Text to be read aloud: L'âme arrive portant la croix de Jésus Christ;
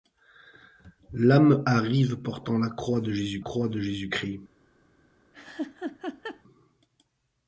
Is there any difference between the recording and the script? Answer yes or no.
yes